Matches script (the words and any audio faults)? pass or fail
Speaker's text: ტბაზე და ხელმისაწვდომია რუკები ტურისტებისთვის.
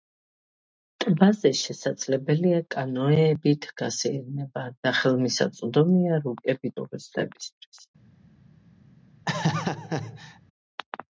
fail